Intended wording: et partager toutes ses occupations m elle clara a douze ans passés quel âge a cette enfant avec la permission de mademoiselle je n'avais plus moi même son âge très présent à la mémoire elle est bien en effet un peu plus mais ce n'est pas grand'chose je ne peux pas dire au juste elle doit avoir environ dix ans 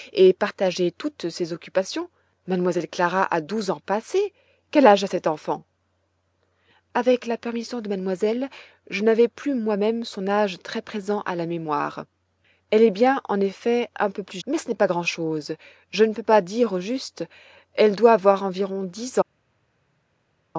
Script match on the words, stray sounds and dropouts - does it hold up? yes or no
yes